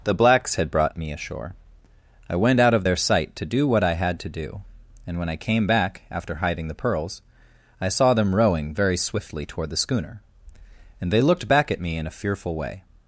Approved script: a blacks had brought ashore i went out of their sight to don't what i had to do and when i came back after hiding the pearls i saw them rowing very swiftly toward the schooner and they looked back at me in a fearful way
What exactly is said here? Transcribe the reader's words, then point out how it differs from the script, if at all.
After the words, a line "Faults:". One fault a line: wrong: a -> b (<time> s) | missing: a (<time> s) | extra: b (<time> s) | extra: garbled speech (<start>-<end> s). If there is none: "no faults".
the blacks had brought me ashore i went out of their sight to do what i had to do and when i came back after hiding the pearls i saw them rowing very swiftly toward the schooner and they looked back at me in a fearful way
Faults:
wrong: a -> the (0.0 s)
extra: me (1.0 s)
wrong: don't -> do (3.4 s)